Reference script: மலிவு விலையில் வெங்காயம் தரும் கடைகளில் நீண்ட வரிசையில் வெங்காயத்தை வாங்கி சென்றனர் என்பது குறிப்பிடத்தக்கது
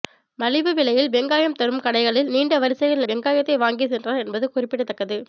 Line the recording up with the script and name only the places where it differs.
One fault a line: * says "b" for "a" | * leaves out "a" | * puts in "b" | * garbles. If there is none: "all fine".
all fine